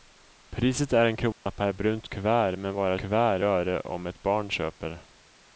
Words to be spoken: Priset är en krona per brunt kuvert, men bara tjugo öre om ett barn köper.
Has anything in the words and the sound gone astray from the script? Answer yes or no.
yes